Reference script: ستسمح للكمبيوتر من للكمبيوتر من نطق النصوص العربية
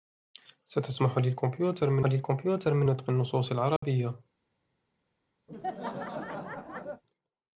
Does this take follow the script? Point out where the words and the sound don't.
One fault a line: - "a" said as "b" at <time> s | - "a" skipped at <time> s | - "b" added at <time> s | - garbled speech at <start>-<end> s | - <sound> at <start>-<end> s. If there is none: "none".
- dropout at 3.8-3.8 s
- laugh at 5.5-7.0 s